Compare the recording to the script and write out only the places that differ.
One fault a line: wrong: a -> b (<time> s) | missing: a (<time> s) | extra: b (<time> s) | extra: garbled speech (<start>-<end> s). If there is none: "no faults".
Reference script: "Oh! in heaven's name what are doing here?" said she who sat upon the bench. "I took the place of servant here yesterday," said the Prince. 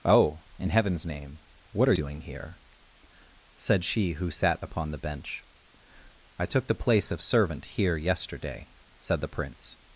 no faults